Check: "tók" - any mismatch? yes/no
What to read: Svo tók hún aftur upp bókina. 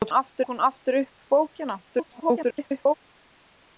yes